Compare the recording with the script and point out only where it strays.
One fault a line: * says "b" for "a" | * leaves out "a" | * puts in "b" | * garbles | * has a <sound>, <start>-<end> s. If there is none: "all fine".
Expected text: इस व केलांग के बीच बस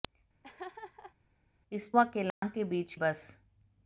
* has a laugh, 0.4-1.2 s
* has a dropout, 2.3-2.4 s